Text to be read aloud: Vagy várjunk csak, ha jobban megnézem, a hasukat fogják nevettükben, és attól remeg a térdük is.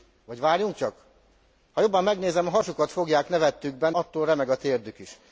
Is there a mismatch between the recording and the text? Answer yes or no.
yes